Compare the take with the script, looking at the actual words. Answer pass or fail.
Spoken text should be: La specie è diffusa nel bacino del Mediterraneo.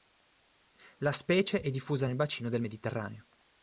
pass